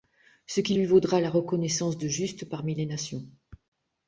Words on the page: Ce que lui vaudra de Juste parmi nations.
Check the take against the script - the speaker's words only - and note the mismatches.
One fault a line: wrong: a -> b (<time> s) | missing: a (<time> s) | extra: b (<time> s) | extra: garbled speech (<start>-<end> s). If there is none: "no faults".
wrong: que -> qui (0.6 s)
extra: la reconnaissance (1.2 s)
extra: les (2.7 s)